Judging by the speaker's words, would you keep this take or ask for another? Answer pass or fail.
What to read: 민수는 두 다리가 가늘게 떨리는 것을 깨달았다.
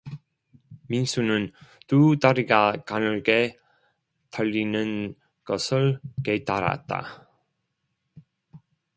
pass